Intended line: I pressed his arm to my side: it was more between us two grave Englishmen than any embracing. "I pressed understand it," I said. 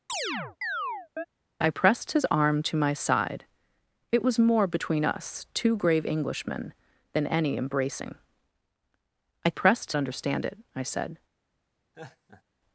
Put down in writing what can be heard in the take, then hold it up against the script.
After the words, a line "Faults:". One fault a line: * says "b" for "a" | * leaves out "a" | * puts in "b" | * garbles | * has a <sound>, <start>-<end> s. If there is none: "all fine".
I pressed his arm to my side: it was more between us two grave Englishmen than any embracing. "I pressed understand it," I said.
Faults:
* has a chirp, 0.1-1.3 s
* has a laugh, 11.9-12.4 s